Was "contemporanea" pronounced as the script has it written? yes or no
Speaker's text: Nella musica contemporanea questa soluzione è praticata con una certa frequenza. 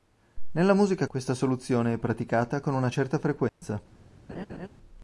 no